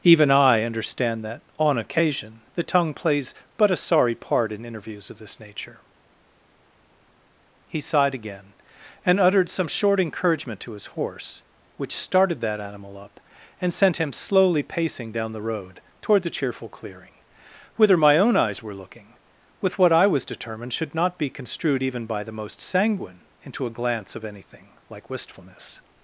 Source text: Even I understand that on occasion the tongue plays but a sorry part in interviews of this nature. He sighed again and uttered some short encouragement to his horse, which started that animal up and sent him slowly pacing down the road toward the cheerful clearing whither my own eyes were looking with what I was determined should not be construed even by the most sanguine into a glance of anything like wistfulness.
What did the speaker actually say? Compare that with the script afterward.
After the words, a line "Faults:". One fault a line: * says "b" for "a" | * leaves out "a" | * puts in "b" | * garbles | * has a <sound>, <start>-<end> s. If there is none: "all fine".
Even I understand that on occasion the tongue plays but a sorry part in interviews of this nature. He sighed again and uttered some short encouragement to his horse, which started that animal up and sent him slowly pacing down the road toward the cheerful clearing whither my own eyes were looking with what I was determined should not be construed even by the most sanguine into a glance of anything like wistfulness.
Faults:
all fine